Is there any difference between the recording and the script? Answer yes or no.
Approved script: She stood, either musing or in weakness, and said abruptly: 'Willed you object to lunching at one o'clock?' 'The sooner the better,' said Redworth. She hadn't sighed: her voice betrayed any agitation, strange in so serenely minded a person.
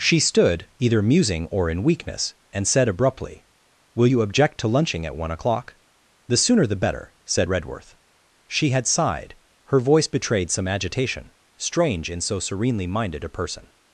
yes